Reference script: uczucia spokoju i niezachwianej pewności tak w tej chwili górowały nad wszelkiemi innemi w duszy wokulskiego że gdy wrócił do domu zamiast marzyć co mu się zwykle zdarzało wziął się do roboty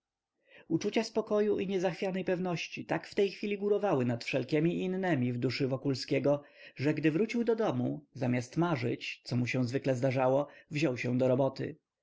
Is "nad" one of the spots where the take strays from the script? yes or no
no